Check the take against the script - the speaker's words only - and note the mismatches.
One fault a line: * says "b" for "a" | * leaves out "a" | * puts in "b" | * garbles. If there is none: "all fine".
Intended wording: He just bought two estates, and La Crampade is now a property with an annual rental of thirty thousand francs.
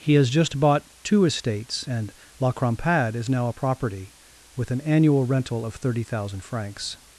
* puts in "has"